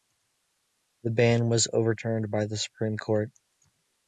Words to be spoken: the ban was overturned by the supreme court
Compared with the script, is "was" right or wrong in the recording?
right